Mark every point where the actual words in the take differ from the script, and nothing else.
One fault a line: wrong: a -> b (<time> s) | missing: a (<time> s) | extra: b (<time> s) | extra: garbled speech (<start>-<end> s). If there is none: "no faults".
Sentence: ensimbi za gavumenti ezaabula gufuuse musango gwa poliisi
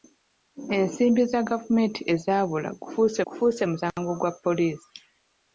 extra: gufuuse (3.3 s)